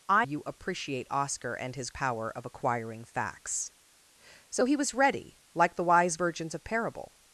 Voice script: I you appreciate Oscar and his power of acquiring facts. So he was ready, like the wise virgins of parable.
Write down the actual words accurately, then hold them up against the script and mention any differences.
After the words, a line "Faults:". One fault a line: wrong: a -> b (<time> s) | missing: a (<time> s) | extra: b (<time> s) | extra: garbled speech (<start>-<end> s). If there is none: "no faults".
I you appreciate Oscar and his power of acquiring facts. So he was ready, like the wise virgins of parable.
Faults:
no faults